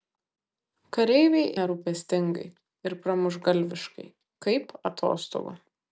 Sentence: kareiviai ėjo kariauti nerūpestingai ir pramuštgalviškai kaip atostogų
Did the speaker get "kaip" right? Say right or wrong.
right